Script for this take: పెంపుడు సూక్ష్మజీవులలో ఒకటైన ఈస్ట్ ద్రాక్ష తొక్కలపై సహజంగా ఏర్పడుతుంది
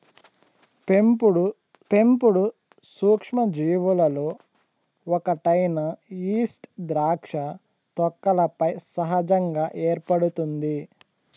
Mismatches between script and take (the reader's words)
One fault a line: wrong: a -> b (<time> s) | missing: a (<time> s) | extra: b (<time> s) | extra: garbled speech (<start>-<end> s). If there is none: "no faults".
extra: పెంపుడు (1.9 s)